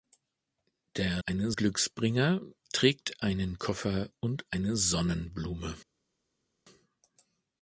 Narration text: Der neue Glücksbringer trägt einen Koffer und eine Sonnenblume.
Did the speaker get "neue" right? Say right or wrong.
wrong